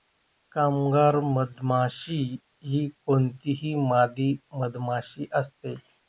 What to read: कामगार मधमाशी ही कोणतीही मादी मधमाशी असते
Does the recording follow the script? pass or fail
pass